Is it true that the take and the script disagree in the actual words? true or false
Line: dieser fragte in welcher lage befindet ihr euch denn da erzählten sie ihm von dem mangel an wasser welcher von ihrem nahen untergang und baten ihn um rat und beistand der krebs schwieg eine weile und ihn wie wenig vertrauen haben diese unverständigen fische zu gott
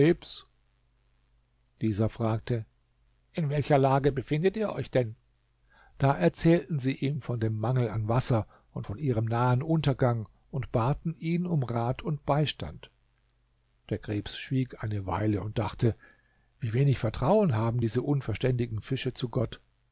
true